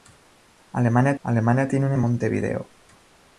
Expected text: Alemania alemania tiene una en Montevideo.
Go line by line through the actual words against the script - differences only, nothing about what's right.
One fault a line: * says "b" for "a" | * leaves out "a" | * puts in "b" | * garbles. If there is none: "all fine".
all fine